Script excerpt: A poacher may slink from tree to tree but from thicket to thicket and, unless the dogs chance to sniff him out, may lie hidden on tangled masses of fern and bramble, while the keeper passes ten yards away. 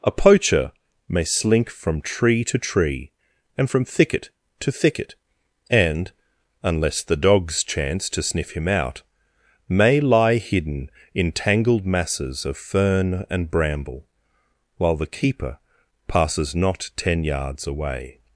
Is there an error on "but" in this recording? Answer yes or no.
yes